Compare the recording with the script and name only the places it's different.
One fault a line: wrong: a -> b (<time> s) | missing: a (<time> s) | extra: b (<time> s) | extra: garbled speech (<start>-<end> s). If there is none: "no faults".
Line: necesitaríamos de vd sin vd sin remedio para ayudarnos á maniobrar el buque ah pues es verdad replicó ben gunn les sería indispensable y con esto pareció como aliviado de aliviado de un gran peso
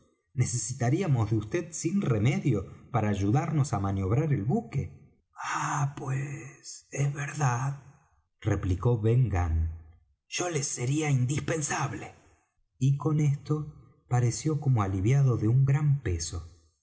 missing: vd sin (2.0 s)
extra: yo (10.3 s)
missing: aliviado de (15.5 s)